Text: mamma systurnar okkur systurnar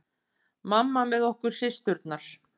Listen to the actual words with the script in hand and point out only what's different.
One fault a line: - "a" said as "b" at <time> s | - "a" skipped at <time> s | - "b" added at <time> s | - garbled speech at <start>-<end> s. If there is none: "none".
- "systurnar" said as "með" at 1.1 s